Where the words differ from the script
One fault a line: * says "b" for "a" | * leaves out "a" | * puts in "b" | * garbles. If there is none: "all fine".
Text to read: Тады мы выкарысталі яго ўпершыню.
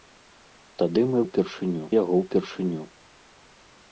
* says "ўпершыню" for "выкарысталі"